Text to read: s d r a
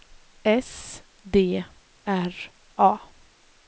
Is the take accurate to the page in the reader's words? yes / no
yes